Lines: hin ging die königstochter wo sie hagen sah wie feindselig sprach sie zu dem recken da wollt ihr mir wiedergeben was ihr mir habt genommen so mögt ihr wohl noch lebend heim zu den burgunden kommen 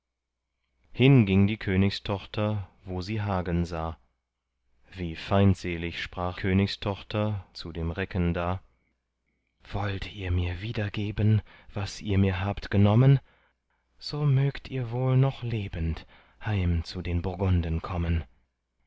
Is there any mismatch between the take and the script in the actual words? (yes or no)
yes